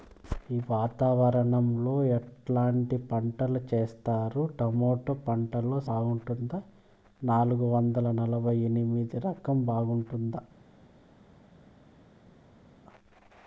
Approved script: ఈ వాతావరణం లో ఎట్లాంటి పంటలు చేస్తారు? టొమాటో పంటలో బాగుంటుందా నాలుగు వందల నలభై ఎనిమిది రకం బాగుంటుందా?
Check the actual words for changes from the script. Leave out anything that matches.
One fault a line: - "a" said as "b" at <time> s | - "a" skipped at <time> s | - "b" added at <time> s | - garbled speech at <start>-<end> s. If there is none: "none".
none